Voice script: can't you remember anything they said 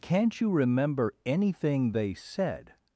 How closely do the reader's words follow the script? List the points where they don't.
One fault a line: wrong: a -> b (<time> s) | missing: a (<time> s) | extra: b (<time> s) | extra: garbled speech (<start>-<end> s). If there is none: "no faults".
no faults